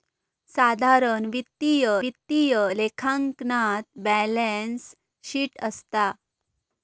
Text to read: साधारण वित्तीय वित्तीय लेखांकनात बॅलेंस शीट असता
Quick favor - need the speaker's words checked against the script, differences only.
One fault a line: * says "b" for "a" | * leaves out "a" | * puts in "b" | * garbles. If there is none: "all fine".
all fine